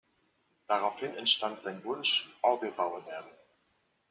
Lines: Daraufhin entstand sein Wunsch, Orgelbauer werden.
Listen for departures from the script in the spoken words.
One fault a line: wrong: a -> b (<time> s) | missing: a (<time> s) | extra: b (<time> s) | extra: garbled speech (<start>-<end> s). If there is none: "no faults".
no faults